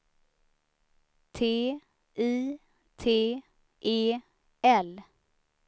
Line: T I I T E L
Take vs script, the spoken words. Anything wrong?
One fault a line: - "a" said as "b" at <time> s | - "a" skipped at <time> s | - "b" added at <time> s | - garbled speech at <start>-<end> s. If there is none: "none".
- "I" skipped at 2.6 s